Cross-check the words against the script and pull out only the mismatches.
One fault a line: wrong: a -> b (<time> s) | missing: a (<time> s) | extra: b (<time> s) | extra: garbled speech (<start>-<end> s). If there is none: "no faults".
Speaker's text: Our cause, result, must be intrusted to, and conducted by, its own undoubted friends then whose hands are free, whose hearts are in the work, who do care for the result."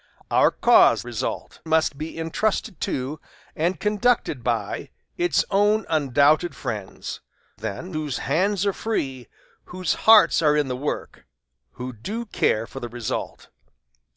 no faults